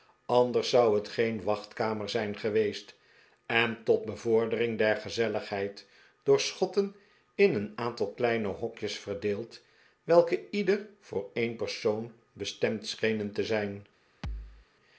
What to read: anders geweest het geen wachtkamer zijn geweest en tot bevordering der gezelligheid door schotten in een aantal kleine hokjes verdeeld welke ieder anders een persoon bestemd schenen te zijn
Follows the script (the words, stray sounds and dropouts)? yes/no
no